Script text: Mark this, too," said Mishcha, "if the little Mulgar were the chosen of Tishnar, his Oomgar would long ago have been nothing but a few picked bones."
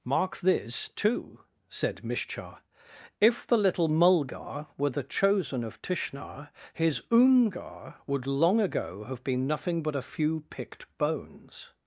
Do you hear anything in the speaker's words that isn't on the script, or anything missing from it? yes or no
no